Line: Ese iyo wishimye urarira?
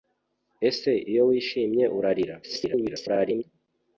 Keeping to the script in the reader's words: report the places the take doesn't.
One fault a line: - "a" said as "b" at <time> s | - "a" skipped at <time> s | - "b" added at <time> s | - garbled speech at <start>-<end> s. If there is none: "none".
- garbled speech at 2.4-3.4 s